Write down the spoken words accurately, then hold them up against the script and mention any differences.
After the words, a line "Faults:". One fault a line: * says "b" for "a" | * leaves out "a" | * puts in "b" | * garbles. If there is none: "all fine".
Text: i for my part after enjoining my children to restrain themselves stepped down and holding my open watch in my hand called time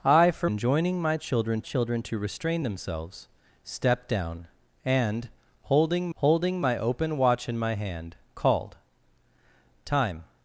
i for enjoining my children children to restrain themselves stepped down and holding holding my open watch in my hand called time
Faults:
* leaves out "my part after"
* puts in "children"
* puts in "holding"